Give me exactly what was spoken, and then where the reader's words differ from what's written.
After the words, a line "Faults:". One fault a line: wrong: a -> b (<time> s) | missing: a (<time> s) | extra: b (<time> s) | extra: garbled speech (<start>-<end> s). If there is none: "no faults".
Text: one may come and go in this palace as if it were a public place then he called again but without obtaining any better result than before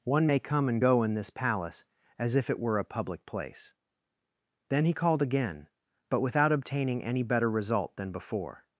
one may come and go in this palace as if it were a public place then he called again but without obtaining any better result than before
Faults:
no faults